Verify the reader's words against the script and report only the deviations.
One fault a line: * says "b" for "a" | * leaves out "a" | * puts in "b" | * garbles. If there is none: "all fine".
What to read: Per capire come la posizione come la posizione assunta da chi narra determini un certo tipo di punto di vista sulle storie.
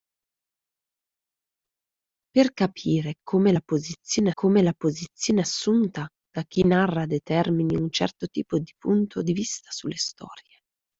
all fine